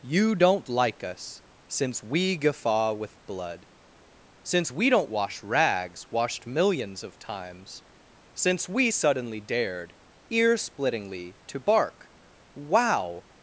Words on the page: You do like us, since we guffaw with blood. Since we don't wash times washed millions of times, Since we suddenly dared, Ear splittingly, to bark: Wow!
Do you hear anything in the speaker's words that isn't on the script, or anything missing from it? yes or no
yes